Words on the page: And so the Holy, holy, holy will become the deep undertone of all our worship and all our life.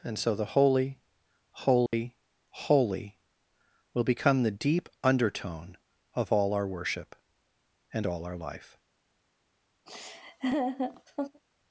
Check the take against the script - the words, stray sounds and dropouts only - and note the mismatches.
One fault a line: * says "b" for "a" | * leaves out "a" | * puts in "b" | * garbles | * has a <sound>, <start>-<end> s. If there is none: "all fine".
* has a dropout, 1.9-1.9 s
* has a laugh, 9.9-11.4 s